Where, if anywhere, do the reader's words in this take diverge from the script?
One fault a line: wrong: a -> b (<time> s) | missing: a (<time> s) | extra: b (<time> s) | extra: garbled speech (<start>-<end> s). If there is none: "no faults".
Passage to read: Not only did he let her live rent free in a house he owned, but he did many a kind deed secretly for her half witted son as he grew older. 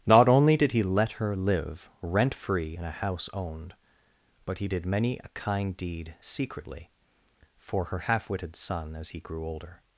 missing: he (3.3 s)